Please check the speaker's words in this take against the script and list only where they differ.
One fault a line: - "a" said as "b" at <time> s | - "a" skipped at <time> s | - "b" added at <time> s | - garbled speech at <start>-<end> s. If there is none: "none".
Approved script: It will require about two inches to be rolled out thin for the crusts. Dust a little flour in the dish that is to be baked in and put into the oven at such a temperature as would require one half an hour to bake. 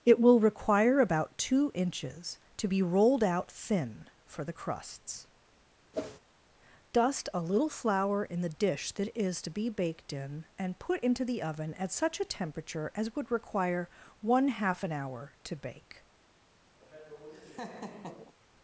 none